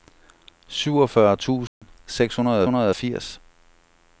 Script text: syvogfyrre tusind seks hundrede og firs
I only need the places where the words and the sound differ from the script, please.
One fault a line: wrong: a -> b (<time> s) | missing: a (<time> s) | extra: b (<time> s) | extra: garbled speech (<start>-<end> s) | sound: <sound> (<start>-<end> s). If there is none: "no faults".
sound: dropout (1.7-1.8 s)
extra: hundrede (2.6 s)